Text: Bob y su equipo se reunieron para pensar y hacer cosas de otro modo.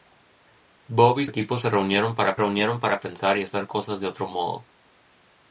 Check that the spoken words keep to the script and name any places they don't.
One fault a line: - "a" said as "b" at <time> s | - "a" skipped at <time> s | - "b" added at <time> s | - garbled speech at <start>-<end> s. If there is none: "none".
- "su" skipped at 1.2 s
- "reunieron para" added at 2.3 s